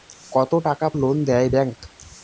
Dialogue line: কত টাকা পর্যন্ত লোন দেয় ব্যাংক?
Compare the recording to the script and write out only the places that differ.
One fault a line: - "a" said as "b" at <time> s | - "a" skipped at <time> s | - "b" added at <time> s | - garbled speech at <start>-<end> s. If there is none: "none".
- "পর্যন্ত" skipped at 0.9 s